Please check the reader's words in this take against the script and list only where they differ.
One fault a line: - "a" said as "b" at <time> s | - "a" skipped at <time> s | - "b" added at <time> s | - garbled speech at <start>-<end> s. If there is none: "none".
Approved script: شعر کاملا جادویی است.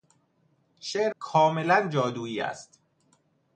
none